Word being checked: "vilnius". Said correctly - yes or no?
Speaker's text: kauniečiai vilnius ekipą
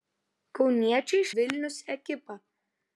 yes